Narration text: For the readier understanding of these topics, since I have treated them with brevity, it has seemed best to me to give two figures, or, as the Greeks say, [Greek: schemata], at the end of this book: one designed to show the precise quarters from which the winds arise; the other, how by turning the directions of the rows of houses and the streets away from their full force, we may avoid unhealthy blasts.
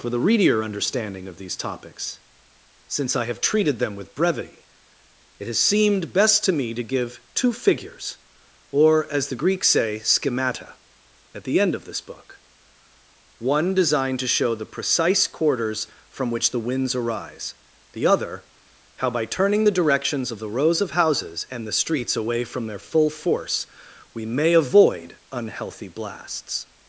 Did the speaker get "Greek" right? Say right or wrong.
wrong